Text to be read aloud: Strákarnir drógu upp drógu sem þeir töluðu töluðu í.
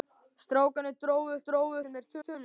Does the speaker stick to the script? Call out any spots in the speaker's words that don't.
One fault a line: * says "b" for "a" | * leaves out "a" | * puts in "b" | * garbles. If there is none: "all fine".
all fine